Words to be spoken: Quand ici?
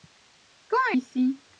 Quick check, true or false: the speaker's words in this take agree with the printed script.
true